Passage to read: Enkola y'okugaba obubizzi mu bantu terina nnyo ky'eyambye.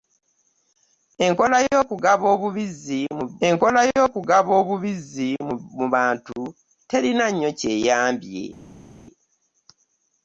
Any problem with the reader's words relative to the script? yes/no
yes